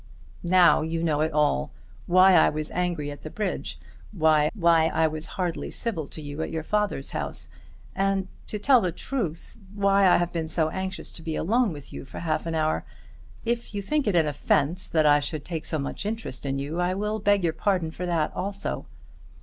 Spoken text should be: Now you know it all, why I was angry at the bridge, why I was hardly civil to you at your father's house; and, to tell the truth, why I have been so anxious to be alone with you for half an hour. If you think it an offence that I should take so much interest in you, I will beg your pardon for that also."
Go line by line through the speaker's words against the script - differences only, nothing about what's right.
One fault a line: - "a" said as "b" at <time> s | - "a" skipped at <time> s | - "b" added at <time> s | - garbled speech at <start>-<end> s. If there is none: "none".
- "why" added at 4.5 s